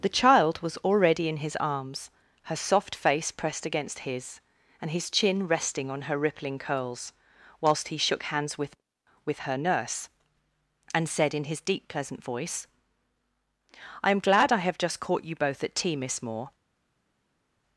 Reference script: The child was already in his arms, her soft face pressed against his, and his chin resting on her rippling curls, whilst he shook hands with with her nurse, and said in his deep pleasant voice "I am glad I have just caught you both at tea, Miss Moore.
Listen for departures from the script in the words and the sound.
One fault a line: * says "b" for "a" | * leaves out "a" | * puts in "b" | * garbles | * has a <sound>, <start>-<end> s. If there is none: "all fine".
all fine